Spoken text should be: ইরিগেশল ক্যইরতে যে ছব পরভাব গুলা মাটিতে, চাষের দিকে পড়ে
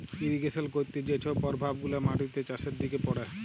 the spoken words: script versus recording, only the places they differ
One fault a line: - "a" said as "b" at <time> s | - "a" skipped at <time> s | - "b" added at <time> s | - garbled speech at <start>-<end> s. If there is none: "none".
none